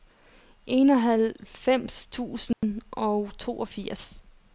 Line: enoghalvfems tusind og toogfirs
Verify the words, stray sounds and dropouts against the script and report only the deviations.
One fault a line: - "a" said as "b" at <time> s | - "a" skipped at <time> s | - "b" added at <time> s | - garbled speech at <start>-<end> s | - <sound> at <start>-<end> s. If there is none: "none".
- dropout at 2.5-2.6 s